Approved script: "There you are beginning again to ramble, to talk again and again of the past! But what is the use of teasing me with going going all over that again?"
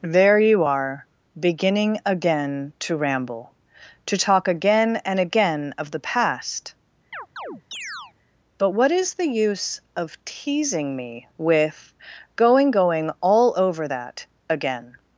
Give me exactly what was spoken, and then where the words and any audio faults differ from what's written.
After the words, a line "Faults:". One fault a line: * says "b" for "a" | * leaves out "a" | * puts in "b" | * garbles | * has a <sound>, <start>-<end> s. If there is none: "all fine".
"There you are beginning again to ramble, to talk again and again of the past! But what is the use of teasing me with going going all over that again?"
Faults:
* has a chirp, 7.1-8.1 s